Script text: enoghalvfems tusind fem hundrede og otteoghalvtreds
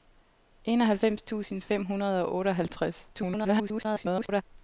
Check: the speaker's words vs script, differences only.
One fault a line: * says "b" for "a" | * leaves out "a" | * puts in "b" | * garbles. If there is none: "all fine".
* garbles